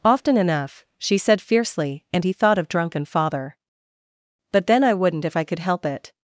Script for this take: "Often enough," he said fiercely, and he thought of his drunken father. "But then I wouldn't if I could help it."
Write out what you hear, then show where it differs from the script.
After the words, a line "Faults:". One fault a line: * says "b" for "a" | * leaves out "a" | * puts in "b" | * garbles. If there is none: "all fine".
"Often enough," she said fiercely, and he thought of drunken father. "But then I wouldn't if I could help it."
Faults:
* says "she" for "he"
* leaves out "his"